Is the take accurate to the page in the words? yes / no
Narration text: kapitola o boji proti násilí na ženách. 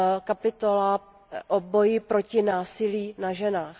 yes